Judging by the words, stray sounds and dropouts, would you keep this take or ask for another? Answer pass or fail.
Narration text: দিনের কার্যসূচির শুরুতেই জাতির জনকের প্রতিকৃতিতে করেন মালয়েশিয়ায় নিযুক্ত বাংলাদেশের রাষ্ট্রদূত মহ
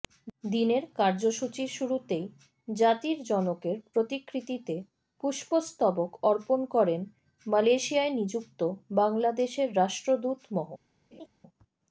fail